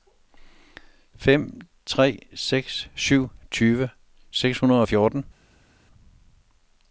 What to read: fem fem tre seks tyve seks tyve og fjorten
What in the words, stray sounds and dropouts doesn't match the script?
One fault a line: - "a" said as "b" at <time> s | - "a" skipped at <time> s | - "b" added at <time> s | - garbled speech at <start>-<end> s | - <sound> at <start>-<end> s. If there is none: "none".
- "fem" skipped at 1.6 s
- "syv" added at 3.0 s
- "tyve" said as "hundrede" at 4.6 s